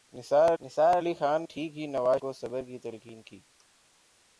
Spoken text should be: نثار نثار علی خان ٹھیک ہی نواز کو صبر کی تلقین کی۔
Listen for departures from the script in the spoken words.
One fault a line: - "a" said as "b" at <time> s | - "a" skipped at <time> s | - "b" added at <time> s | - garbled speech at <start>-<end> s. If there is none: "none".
none